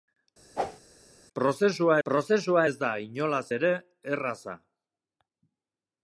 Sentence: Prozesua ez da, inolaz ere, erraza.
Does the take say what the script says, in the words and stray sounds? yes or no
no